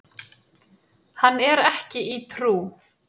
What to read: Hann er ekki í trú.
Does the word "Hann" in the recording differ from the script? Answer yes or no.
no